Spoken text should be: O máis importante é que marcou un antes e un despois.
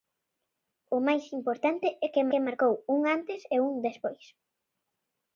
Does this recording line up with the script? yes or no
no